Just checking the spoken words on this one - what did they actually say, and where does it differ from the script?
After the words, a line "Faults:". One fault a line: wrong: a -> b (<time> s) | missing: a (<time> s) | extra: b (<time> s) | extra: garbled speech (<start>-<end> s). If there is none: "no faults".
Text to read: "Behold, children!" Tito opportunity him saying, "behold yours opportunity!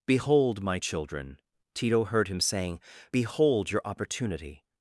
"Behold, my children!" Tito heard him saying, "behold your opportunity!
Faults:
extra: my (0.6 s)
wrong: opportunity -> heard (2.1 s)
wrong: yours -> your (3.7 s)